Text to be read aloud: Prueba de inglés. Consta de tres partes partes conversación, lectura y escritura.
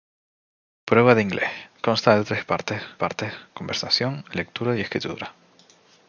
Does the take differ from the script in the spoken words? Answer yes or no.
no